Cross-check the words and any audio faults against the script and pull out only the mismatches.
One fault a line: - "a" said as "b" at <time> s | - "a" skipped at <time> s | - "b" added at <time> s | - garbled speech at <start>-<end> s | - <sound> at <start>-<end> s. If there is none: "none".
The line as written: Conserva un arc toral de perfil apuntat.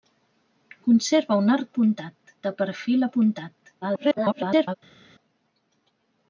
- "toral" said as "apuntat" at 1.7 s
- garbled speech at 3.8-4.7 s